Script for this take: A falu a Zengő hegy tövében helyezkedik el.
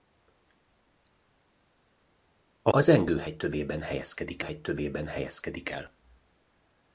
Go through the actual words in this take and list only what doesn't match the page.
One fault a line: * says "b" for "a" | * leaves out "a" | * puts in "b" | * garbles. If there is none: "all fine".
* leaves out "falu"
* puts in "hegy tövében helyezkedik"